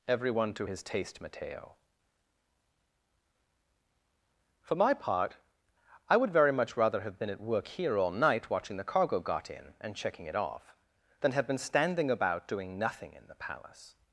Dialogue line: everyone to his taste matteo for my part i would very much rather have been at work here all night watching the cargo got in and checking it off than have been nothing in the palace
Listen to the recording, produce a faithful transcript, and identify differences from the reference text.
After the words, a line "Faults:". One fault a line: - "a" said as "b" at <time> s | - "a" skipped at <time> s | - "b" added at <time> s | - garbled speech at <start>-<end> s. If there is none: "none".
everyone to his taste matteo for my part i would very much rather have been at work here all night watching the cargo got in and checking it off than have been standing about doing nothing in the palace
Faults:
- "standing about doing" added at 11.6 s